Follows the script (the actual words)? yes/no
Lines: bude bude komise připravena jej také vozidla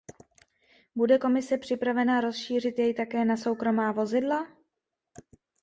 no